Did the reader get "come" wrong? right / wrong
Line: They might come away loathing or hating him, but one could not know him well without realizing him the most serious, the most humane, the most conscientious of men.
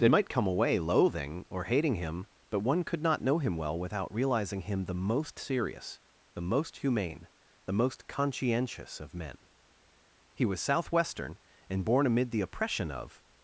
right